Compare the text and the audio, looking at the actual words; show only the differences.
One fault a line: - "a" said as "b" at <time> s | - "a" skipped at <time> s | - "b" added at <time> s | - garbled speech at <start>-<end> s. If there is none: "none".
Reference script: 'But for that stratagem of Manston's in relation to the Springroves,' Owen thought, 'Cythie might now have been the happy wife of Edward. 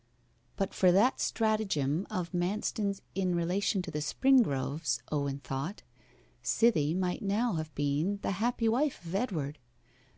none